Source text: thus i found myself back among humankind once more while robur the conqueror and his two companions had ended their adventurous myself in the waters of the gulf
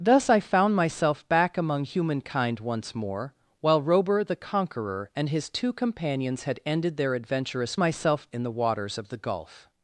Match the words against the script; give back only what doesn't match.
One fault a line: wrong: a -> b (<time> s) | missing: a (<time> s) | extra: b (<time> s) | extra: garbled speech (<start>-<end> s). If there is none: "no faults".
no faults